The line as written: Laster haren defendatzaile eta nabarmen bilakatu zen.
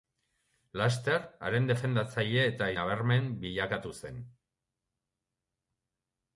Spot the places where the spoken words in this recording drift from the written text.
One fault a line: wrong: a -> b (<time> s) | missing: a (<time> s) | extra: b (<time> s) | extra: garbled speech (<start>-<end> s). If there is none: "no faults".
no faults